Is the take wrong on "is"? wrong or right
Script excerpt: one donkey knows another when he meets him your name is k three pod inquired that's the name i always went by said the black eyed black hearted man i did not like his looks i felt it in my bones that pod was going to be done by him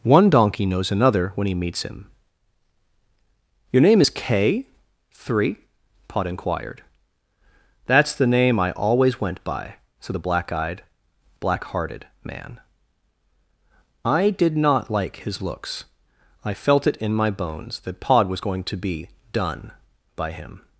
right